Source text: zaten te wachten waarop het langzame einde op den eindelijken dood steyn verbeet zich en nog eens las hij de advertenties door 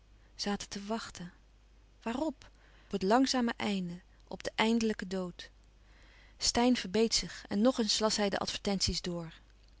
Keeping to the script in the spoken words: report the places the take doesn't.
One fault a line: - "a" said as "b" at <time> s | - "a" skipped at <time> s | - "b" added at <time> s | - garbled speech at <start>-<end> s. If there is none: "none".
none